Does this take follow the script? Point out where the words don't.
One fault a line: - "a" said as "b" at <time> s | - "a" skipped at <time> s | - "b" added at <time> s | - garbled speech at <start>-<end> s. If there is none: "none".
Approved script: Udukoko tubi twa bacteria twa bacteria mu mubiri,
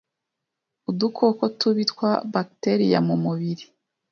- "twa bacteria" skipped at 3.0 s